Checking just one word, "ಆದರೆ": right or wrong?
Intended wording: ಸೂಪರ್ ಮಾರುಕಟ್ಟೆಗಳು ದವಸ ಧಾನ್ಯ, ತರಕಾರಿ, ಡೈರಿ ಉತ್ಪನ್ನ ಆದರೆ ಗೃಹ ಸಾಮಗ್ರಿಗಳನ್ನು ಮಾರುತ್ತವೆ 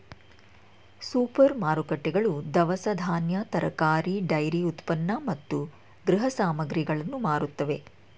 wrong